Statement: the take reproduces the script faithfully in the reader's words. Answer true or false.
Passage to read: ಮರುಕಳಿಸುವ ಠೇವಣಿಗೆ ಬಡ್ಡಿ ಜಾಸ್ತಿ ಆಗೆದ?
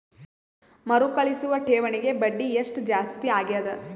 false